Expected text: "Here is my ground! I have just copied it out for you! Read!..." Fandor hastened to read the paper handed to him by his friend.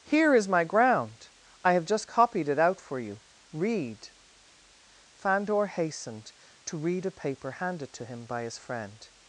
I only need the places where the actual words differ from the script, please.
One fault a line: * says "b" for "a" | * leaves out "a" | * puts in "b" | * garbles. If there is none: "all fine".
* says "a" for "the"